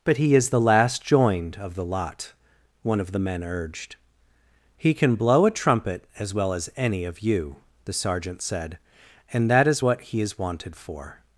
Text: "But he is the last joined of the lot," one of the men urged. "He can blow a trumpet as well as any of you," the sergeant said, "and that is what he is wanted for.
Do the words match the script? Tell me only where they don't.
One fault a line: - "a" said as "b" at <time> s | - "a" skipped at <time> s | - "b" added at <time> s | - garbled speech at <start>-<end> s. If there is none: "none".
none